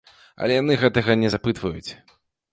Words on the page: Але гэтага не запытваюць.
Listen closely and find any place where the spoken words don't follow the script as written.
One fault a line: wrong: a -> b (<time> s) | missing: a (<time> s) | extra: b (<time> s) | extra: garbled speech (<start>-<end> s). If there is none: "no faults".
extra: яны (0.6 s)